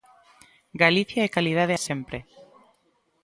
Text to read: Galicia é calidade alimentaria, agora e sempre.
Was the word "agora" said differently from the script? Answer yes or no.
yes